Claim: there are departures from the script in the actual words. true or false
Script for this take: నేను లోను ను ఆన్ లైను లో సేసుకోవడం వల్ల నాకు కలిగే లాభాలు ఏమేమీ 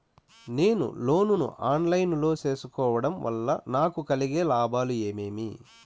false